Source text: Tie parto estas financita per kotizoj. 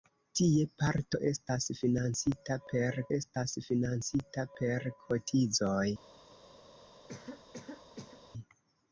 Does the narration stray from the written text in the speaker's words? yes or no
yes